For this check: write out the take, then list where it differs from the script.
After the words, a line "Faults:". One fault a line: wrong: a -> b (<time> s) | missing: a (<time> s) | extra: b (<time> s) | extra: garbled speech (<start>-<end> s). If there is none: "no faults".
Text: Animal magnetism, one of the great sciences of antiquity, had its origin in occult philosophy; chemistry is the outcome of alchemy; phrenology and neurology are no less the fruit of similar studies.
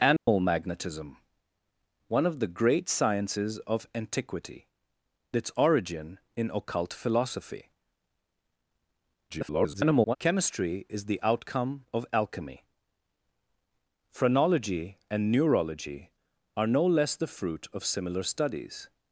Animal magnetism, one of the great sciences of antiquity, its origin in occult philosophy; [garbled] chemistry is the outcome of alchemy; phrenology and neurology are no less the fruit of similar studies.
Faults:
missing: had (4.7 s)
extra: garbled speech (9.3-10.2 s)